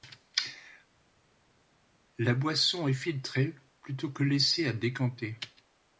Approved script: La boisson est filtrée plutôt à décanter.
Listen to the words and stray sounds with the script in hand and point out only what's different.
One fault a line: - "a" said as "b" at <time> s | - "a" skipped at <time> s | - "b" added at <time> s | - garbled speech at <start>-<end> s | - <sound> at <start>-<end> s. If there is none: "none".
- "que laissée" added at 4.1 s